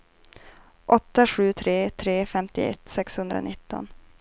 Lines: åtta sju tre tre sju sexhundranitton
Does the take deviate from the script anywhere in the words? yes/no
yes